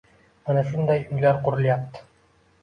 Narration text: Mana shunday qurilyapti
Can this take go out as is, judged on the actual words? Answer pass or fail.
fail